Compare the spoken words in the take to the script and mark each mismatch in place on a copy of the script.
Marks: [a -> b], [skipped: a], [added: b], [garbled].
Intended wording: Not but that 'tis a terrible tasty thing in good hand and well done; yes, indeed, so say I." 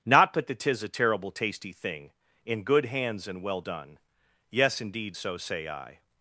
Not but that 'tis a terrible tasty thing in good [hand -> hands] and well done; yes, indeed, so say I."